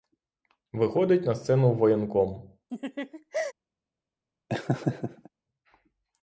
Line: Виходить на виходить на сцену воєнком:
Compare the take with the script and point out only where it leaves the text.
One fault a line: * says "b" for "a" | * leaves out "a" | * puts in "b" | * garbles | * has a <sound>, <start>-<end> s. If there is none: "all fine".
* leaves out "виходить на"
* has a laugh, 2.7-3.5 s
* has a laugh, 4.5-5.3 s